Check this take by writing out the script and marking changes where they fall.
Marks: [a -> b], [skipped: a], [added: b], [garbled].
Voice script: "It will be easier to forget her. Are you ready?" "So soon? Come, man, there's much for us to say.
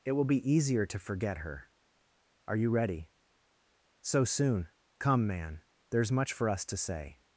"It will be easier to forget her. Are you ready?" "So soon? Come, man, there's much for us to say.